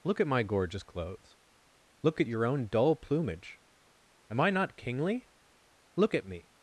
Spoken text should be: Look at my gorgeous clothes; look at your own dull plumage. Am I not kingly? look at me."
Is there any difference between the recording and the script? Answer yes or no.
no